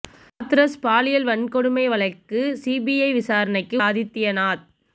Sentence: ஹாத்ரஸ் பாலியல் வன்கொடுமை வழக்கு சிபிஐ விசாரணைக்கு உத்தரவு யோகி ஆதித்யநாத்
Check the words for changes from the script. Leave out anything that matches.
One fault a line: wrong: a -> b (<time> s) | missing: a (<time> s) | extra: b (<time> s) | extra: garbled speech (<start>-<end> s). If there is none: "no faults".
missing: உத்தரவு யோகி (3.8 s)